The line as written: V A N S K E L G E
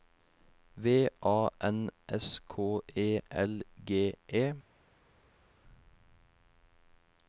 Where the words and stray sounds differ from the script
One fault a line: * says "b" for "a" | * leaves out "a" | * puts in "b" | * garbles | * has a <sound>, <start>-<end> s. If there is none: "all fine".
all fine